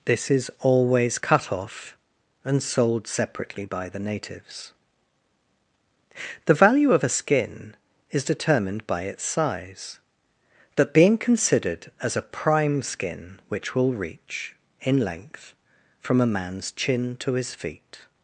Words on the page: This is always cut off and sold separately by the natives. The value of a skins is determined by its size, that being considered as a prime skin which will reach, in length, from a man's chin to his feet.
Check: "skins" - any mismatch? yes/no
yes